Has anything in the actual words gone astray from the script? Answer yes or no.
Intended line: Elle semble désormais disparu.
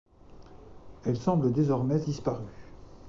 no